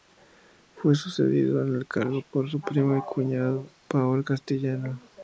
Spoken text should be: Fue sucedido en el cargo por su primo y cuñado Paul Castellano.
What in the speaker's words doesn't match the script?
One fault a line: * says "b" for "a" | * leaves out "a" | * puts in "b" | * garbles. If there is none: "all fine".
all fine